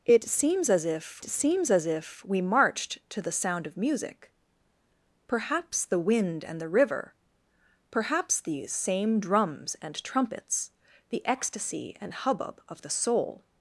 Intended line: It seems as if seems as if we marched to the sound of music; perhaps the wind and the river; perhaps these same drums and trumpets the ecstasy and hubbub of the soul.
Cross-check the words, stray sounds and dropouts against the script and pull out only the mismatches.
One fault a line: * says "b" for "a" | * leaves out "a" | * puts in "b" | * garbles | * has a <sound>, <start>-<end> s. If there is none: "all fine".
all fine